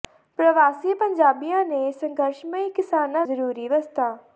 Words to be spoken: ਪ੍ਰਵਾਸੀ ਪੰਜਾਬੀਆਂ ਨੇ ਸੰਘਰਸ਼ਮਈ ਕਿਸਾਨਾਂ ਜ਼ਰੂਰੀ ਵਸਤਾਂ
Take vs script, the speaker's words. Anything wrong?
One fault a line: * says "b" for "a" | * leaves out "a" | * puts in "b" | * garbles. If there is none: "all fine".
all fine